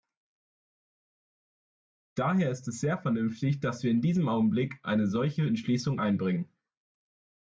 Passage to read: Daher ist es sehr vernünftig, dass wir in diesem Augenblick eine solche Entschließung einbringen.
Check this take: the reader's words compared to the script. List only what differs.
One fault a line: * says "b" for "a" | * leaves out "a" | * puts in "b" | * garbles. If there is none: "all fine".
all fine